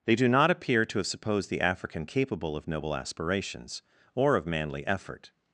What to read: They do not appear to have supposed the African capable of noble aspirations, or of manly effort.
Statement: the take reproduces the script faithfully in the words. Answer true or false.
true